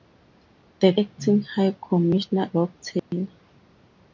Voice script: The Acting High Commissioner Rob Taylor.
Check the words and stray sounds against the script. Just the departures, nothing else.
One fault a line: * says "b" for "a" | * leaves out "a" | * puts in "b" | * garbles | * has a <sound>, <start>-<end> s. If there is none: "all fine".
* has a dropout, 3.0-3.1 s